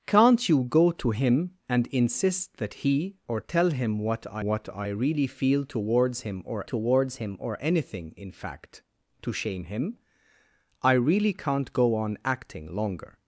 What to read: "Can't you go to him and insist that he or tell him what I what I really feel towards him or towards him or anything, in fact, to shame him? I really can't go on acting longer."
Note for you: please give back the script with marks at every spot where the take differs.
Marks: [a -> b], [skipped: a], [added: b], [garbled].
"Can't you go to him and insist that he or tell him what I what I really feel towards him or towards him or anything, in fact, to shame him? I really can't go on acting longer."